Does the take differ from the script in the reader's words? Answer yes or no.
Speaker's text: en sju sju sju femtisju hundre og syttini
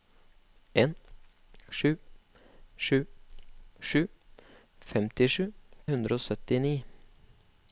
no